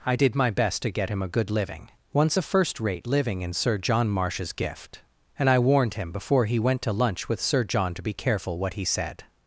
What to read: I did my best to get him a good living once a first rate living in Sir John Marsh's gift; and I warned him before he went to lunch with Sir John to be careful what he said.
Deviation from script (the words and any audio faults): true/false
false